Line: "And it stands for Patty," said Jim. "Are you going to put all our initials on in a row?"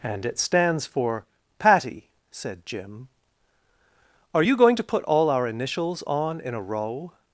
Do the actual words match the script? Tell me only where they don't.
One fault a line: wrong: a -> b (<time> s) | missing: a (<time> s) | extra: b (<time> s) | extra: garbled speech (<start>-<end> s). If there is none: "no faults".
no faults